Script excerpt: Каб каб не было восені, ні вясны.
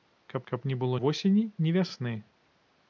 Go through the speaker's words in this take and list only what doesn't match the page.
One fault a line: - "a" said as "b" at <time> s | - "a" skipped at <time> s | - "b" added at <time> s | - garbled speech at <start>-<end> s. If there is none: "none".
none